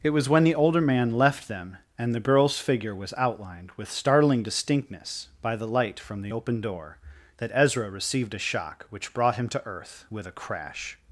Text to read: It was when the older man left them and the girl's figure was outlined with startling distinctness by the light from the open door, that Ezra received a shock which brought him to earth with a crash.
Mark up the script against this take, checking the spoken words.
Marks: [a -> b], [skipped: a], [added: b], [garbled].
It was when the older man left them and the girl's figure was outlined with startling distinctness by the light from the open door, that Ezra received a shock which brought him to earth with a crash.